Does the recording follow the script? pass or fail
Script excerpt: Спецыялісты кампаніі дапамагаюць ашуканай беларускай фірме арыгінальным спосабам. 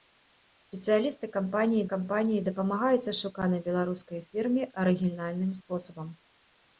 fail